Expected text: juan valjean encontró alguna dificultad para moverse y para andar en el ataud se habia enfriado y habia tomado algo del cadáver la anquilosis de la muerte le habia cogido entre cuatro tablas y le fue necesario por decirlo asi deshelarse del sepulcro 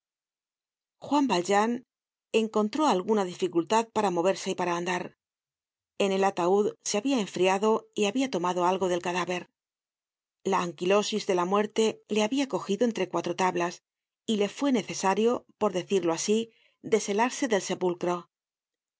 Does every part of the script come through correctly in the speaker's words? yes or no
yes